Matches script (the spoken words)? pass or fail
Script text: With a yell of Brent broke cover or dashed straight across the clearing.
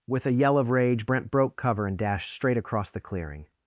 fail